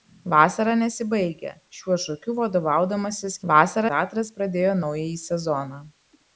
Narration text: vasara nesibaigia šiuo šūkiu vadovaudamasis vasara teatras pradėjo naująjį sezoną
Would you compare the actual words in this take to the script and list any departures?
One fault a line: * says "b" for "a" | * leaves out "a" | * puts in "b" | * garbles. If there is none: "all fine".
all fine